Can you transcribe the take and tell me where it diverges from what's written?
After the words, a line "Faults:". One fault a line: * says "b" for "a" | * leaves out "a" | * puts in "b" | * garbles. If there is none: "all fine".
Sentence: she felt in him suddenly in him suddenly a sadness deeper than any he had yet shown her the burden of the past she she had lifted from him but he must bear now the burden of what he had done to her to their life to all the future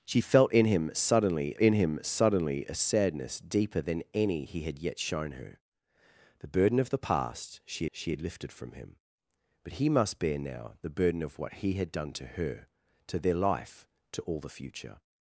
she felt in him suddenly in him suddenly a sadness deeper than any he had yet shown her the burden of the past she she had lifted from him but he must bear now the burden of what he had done to her to their life to all the future
Faults:
all fine